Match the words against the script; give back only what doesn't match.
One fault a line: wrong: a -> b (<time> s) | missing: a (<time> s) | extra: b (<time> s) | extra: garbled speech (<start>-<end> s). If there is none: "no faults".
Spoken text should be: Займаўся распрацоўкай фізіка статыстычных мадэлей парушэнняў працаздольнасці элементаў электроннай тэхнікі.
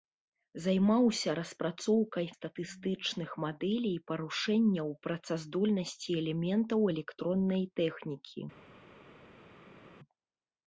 missing: фізіка (2.2 s)